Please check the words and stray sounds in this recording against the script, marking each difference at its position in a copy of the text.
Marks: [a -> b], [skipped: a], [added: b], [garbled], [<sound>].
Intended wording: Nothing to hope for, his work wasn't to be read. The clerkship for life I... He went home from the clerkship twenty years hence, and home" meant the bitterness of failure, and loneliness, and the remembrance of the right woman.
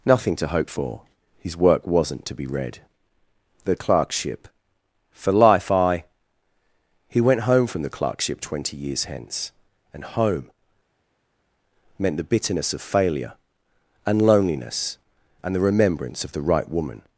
Nothing to hope for, his work wasn't to be read. The clerkship for life I... He went home from the clerkship twenty years hence, and home" meant the bitterness of failure, and loneliness, and the remembrance of the right woman.